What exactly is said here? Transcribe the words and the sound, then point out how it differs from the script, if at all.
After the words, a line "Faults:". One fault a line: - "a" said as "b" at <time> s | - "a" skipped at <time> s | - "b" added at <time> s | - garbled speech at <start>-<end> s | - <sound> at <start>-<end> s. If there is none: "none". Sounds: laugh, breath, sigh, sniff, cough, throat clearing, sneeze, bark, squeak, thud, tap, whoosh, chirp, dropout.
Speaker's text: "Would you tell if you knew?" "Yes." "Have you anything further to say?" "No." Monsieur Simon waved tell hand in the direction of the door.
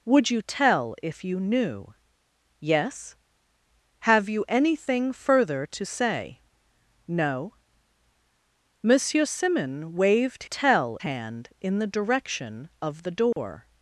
"Would you tell if you knew?" "Yes." "Have you anything further to say?" "No." Monsieur Simon waved tell hand in the direction of the door.
Faults:
- dropout at 13.3-13.4 s